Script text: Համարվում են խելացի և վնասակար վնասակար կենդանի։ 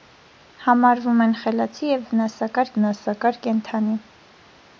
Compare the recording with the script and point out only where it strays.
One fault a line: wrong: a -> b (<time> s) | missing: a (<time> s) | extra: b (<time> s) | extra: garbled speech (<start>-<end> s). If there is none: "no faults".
no faults